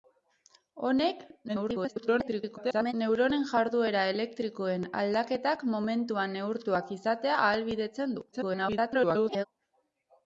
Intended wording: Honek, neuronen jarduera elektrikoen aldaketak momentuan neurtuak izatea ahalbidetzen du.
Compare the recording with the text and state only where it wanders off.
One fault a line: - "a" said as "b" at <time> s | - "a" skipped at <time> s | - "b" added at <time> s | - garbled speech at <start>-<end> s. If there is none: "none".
- garbled speech at 1.5-2.9 s
- garbled speech at 8.3-9.5 s